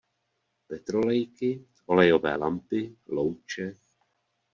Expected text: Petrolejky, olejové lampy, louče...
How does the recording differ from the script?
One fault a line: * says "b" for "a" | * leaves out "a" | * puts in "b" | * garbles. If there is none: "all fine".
all fine